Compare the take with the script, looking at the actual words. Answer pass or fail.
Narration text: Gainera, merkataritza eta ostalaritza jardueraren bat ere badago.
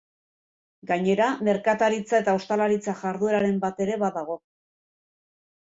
pass